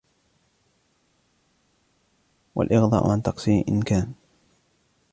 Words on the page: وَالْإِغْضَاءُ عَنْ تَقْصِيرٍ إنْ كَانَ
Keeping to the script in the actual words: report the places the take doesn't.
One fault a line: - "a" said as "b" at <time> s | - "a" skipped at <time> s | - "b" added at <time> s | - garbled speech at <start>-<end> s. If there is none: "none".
none